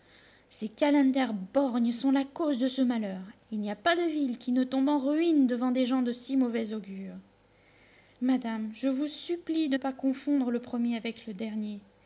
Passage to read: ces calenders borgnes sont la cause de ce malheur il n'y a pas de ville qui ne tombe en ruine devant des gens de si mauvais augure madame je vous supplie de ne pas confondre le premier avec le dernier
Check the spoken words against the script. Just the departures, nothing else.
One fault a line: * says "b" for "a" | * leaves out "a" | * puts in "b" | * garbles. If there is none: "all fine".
* leaves out "ne"